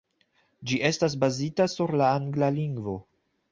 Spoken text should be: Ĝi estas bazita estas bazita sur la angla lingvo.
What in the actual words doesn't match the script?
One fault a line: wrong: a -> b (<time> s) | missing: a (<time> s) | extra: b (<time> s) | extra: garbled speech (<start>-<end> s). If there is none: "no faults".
missing: estas bazita (1.7 s)